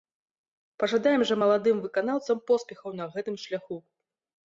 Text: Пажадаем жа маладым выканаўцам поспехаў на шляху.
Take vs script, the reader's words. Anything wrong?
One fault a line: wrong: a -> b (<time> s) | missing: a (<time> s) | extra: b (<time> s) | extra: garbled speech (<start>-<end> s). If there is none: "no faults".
extra: гэтым (3.2 s)